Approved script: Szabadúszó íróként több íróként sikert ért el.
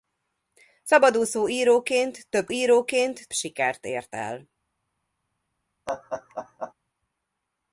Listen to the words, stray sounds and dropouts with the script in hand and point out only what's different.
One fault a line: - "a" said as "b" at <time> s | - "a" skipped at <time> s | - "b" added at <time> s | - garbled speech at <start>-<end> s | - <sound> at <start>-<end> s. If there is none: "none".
- laugh at 5.9-6.7 s